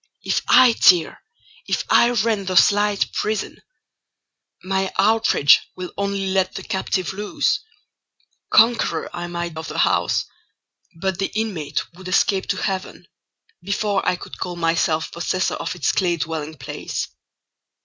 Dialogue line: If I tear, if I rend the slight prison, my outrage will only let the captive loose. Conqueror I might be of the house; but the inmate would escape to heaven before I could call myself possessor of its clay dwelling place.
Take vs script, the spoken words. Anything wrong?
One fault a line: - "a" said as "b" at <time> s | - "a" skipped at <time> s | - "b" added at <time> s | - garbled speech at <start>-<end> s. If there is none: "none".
- "be" skipped at 9.6 s